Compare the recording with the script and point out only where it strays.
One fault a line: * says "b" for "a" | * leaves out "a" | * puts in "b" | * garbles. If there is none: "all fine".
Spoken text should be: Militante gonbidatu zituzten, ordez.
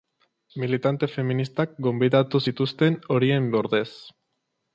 * puts in "feministak"
* puts in "horien"